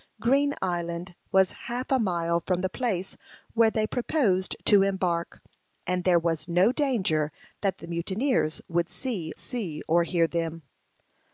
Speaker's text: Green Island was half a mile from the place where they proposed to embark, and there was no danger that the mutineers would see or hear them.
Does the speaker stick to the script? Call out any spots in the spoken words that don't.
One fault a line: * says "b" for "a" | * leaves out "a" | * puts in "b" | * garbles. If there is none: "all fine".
* puts in "see"